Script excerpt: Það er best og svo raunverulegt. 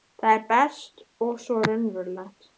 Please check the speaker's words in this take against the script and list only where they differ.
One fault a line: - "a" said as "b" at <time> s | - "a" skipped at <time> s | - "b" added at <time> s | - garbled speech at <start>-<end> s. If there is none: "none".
none